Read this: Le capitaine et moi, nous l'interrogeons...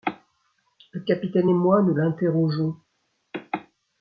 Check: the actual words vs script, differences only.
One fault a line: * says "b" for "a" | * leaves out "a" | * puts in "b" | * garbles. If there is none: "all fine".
all fine